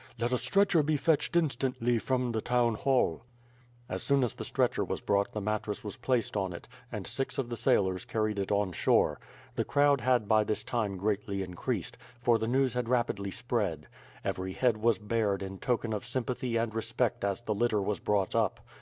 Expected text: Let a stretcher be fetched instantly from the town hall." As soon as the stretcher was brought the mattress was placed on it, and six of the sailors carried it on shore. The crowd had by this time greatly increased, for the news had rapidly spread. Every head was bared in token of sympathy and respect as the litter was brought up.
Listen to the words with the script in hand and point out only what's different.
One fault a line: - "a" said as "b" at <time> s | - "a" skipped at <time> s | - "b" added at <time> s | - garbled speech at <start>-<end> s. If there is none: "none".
none